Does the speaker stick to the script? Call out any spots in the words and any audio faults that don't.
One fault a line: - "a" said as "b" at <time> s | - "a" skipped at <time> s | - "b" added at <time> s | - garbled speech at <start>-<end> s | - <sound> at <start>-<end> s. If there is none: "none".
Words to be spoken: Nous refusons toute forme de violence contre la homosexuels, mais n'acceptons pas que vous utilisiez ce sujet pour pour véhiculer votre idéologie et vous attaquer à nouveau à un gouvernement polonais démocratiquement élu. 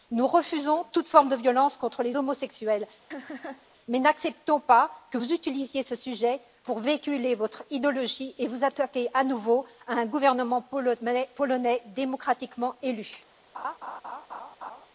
- "la" said as "les" at 2.0 s
- laugh at 3.1-3.7 s
- "pour" skipped at 6.8 s
- laugh at 13.5-14.9 s